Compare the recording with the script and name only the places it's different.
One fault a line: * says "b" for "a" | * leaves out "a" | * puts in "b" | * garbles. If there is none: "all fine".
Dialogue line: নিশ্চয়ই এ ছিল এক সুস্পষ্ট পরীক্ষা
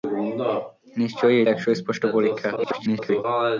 * leaves out "ছিল"
* garbles